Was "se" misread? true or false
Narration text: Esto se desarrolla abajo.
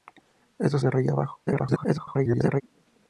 true